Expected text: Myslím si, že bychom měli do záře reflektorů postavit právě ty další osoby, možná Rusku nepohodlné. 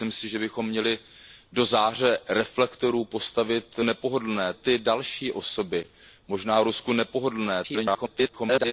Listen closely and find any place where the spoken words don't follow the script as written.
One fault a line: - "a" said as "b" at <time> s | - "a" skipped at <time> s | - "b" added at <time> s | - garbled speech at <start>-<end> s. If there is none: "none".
- "právě" said as "nepohodlné" at 3.8 s
- garbled speech at 7.6-8.7 s